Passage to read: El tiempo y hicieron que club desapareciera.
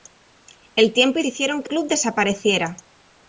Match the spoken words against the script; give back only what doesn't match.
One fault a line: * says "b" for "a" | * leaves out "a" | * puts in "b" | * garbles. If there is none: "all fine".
all fine